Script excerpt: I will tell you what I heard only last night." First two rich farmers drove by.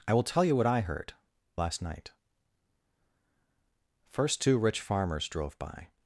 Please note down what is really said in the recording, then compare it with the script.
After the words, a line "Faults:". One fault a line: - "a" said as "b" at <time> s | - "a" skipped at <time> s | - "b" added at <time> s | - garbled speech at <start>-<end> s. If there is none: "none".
I will tell you what I heard last night." First two rich farmers drove by.
Faults:
- "only" skipped at 1.1 s